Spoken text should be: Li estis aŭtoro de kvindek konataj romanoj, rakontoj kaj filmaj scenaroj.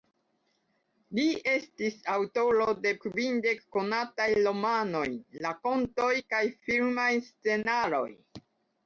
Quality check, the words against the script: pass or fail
pass